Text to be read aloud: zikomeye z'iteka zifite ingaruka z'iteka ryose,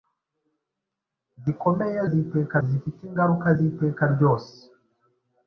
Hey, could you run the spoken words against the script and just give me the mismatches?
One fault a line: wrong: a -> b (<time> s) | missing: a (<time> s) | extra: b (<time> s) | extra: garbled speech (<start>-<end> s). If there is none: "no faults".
no faults